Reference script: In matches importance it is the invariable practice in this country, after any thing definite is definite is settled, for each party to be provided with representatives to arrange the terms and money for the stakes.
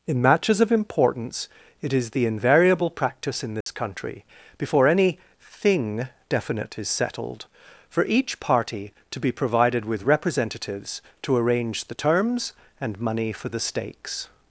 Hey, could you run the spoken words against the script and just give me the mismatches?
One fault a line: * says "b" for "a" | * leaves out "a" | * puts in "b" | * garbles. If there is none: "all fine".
* puts in "of"
* says "before" for "after"
* leaves out "definite is"